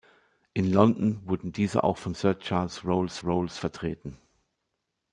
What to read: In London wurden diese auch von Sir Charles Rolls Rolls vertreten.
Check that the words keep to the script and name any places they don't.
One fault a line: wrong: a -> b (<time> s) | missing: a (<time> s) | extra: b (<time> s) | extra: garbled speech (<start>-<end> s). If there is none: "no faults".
no faults